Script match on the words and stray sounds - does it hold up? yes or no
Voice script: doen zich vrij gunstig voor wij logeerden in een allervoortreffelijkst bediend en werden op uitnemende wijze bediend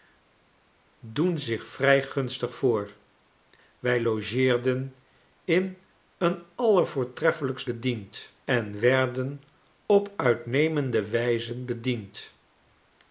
yes